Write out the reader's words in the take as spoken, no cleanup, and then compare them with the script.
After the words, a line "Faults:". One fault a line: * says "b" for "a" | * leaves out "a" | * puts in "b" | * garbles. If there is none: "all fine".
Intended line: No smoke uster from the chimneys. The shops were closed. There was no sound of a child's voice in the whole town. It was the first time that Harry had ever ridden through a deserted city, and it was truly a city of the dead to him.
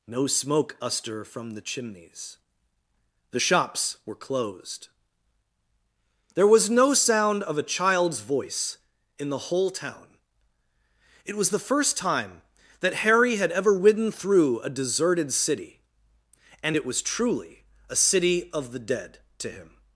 No smoke uster from the chimneys. The shops were closed. There was no sound of a child's voice in the whole town. It was the first time that Harry had ever ridden through a deserted city, and it was truly a city of the dead to him.
Faults:
all fine